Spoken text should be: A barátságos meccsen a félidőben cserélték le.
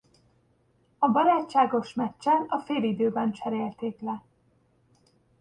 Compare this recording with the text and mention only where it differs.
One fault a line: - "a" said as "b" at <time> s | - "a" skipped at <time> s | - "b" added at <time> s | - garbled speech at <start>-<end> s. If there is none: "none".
none